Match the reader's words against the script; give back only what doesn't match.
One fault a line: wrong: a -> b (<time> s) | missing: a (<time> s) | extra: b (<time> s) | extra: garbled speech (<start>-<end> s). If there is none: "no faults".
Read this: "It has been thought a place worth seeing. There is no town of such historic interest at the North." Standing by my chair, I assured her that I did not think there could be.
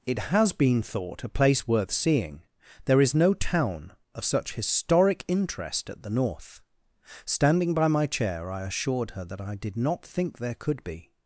no faults